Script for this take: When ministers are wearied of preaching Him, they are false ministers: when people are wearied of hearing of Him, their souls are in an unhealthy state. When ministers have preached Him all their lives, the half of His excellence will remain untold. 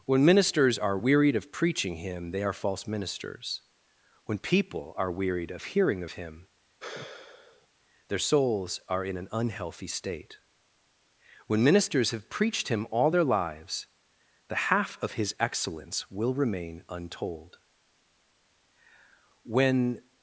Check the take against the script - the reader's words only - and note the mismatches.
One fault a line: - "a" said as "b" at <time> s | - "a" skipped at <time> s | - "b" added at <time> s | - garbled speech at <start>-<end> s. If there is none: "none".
- "When" added at 19.4 s